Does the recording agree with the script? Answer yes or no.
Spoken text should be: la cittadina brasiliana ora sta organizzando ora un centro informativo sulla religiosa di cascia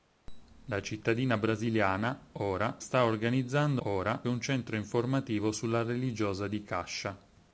yes